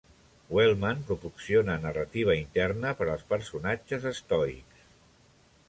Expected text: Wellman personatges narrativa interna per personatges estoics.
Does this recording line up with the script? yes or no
no